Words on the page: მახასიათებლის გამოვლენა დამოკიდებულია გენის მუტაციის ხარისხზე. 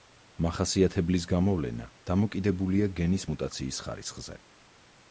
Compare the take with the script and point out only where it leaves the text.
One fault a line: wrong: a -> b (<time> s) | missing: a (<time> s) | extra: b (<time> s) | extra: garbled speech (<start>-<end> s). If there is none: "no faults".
no faults